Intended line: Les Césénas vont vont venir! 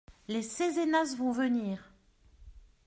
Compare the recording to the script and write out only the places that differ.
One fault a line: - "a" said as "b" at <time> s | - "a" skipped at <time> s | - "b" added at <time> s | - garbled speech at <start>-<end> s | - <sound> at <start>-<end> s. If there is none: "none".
- "vont" skipped at 1.3 s